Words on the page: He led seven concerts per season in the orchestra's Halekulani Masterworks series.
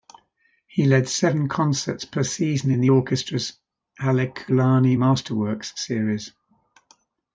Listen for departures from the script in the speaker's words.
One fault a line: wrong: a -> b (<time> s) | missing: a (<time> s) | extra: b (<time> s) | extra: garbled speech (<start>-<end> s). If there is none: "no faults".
no faults